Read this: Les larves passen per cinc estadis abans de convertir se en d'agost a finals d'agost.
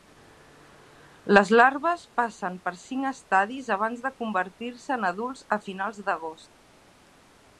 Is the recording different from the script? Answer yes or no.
yes